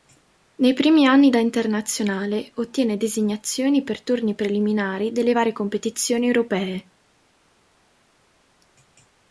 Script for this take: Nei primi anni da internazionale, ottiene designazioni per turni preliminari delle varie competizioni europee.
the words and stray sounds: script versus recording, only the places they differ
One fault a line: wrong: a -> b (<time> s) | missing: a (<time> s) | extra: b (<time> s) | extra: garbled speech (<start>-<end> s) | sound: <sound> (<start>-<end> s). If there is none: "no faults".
no faults